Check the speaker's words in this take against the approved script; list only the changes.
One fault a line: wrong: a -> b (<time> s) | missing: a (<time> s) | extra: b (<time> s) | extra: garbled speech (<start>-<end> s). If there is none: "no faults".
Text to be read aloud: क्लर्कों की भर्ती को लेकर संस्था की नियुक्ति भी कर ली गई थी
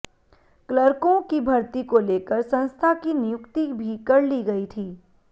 no faults